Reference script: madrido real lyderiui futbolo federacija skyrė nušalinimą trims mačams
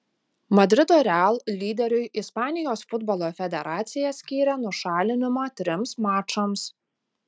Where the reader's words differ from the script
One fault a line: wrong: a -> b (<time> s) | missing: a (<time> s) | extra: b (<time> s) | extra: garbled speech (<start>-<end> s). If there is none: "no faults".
extra: ispanijos (2.2 s)